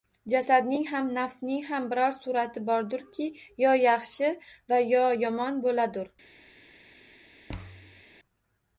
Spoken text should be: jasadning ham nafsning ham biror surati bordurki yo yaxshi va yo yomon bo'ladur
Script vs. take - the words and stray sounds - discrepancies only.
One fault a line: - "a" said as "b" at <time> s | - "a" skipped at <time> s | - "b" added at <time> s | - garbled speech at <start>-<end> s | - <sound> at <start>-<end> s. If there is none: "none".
- thud at 7.5-8.0 s